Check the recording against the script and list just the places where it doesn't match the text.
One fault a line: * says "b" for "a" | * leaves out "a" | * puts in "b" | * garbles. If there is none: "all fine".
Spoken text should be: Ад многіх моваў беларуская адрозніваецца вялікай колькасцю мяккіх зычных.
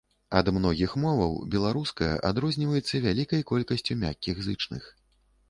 all fine